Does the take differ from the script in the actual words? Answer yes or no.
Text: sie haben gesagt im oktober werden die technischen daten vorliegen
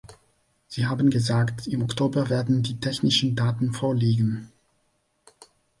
no